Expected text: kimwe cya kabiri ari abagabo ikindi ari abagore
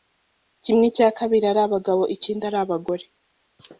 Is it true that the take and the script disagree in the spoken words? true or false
false